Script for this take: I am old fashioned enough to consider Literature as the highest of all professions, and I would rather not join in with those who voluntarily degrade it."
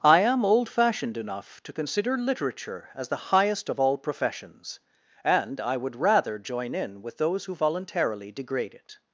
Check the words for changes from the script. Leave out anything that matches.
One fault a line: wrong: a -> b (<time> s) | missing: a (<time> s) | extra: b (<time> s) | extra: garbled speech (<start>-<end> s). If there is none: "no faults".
missing: not (6.4 s)